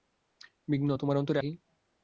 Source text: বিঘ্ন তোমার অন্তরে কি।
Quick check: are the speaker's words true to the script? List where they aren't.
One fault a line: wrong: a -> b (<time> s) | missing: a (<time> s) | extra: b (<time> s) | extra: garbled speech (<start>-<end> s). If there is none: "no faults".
no faults